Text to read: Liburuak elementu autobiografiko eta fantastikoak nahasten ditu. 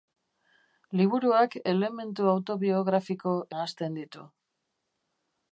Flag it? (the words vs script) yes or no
yes